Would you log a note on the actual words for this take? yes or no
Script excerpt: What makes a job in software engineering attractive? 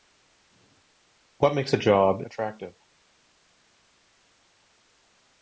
yes